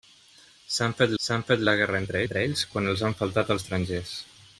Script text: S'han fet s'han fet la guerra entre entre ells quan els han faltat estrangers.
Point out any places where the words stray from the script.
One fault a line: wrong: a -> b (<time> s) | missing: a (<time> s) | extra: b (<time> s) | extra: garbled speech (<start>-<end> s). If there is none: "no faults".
no faults